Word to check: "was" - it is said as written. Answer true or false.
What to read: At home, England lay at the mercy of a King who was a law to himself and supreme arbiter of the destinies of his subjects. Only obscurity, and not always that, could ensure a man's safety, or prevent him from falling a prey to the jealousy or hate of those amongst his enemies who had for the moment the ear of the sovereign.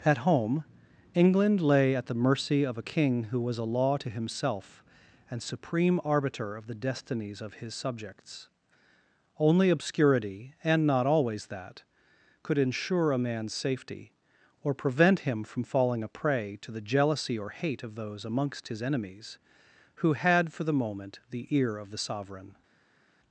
true